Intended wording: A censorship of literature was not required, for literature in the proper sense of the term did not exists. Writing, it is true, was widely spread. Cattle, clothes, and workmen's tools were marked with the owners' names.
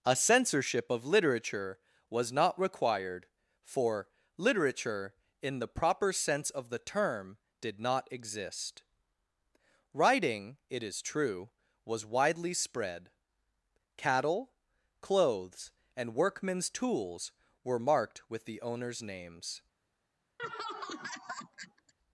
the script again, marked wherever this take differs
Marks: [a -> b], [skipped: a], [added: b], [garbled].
A censorship of literature was not required, for literature in the proper sense of the term did not [exists. -> exist] Writing, it is true, was widely spread. Cattle, clothes, and workmen's tools were marked with the owners' names.